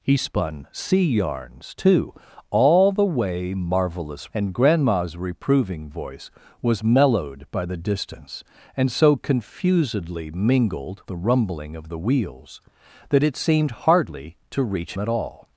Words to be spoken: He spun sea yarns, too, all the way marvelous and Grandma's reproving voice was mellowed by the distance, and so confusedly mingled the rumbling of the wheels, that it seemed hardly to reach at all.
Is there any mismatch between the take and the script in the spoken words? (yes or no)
no